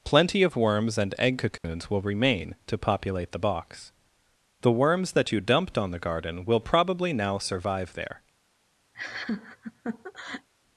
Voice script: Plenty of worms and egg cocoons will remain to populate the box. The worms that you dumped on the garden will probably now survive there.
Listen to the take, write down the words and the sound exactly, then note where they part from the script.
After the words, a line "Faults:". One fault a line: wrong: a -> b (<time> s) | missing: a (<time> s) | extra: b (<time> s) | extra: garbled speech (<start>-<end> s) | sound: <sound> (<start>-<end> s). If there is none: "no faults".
Plenty of worms and egg cocoons will remain to populate the box. The worms that you dumped on the garden will probably now survive there.
Faults:
sound: dropout (1.6-1.6 s)
sound: laugh (8.9-10.5 s)